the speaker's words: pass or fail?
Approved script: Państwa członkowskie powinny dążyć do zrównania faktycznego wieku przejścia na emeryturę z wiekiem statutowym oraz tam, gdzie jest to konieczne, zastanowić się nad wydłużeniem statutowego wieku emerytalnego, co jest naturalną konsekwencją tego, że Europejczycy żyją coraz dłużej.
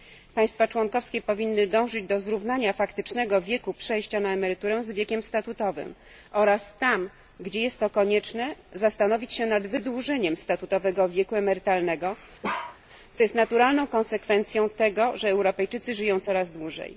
pass